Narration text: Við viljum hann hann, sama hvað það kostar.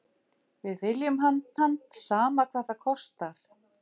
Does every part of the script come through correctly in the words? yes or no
yes